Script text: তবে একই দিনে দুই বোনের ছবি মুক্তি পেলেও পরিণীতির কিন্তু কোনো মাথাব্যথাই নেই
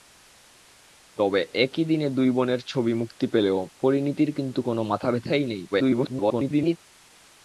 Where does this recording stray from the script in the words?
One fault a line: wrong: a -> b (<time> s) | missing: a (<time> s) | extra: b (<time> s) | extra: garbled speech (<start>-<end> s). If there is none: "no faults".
extra: garbled speech (5.7-6.8 s)